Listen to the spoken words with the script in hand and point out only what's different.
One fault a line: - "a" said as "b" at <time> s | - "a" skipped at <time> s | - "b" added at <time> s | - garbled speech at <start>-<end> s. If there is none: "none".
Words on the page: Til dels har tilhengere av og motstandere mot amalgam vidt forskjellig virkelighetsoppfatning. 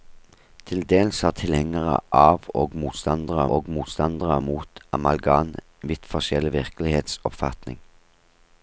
- "og motstandere" added at 3.5 s